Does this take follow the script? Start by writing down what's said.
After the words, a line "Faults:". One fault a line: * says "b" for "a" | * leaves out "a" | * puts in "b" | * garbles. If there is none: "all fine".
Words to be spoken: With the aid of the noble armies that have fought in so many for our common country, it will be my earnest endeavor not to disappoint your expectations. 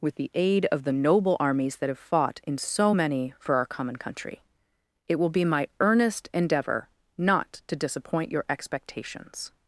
With the aid of the noble armies that have fought in so many for our common country, it will be my earnest endeavor not to disappoint your expectations.
Faults:
all fine